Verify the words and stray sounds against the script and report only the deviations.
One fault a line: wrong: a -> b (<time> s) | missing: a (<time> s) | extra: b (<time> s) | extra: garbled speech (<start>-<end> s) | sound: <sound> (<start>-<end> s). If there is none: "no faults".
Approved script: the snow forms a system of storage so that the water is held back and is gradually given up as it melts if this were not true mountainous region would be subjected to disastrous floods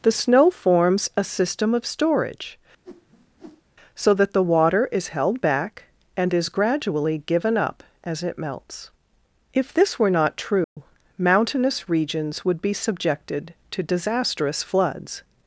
sound: whoosh (2.8-3.6 s)
sound: dropout (10.6-10.8 s)
wrong: region -> regions (11.9 s)